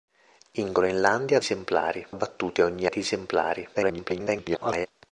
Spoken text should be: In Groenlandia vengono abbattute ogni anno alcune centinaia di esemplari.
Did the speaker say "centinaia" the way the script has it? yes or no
no